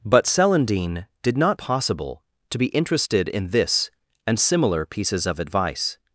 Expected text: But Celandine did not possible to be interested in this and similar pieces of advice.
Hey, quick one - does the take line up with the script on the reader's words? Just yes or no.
yes